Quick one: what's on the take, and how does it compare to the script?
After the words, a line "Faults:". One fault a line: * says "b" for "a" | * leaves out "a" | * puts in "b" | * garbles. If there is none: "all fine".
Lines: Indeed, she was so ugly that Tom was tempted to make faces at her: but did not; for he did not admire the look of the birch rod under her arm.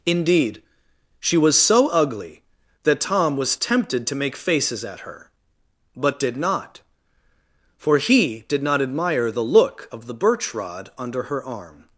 Indeed, she was so ugly that Tom was tempted to make faces at her: but did not; for he did not admire the look of the birch rod under her arm.
Faults:
all fine